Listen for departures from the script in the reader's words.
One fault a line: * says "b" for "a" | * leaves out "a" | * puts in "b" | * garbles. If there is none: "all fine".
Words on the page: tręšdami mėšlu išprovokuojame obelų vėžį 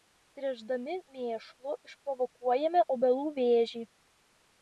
all fine